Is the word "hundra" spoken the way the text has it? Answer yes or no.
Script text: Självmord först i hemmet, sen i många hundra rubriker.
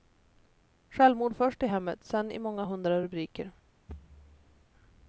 yes